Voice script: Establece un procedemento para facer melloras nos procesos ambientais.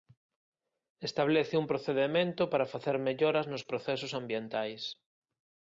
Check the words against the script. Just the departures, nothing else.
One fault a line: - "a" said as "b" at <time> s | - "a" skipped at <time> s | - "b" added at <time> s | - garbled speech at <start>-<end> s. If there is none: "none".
none